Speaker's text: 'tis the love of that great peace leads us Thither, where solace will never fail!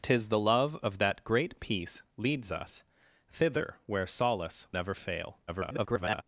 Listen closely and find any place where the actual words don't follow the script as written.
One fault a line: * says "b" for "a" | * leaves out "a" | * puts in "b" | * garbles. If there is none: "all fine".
* leaves out "will"
* garbles